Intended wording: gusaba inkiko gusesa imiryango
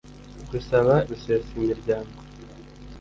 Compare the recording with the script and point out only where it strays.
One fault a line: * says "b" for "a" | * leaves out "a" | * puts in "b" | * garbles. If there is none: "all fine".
* leaves out "inkiko"